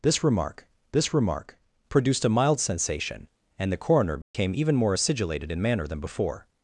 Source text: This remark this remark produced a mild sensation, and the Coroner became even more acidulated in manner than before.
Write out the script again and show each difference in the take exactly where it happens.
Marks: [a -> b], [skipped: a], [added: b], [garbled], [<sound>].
This remark this remark produced a mild sensation, and the Coroner became [dropout] even more acidulated in manner than before.